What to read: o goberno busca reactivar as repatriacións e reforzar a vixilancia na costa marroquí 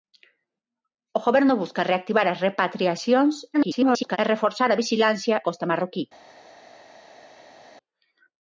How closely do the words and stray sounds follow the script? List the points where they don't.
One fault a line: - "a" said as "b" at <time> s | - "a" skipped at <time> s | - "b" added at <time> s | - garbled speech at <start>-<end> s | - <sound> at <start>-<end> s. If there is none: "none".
- garbled speech at 3.5-4.2 s
- "na" skipped at 5.4 s